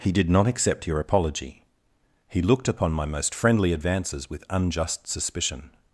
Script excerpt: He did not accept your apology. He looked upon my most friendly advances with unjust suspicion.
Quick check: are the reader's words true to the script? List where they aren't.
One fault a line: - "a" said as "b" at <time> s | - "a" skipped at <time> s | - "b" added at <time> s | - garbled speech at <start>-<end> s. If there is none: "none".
none